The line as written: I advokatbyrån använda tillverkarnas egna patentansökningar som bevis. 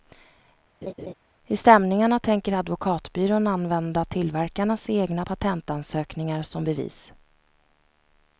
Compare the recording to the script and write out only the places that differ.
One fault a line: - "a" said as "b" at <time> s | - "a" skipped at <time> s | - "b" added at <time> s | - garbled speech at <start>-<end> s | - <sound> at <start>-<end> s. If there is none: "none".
- laugh at 0.8-1.1 s
- "stämningarna tänker" added at 1.6 s